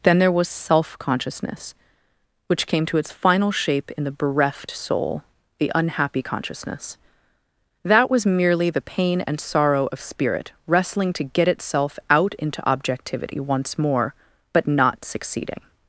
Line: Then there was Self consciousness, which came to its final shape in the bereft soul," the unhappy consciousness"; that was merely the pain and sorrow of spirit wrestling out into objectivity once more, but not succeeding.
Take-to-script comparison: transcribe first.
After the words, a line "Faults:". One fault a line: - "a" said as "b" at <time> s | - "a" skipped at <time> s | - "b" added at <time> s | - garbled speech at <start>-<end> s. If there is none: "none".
Then there was Self consciousness, which came to its final shape in the bereft soul," the unhappy consciousness"; that was merely the pain and sorrow of spirit wrestling to get itself out into objectivity once more, but not succeeding.
Faults:
- "to get itself" added at 11.1 s